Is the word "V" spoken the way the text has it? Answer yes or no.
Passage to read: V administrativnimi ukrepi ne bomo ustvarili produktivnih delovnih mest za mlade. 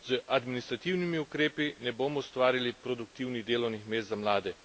no